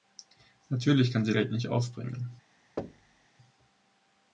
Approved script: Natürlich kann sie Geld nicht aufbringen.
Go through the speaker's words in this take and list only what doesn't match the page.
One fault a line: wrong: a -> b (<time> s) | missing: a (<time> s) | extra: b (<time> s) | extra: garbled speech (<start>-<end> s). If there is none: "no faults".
no faults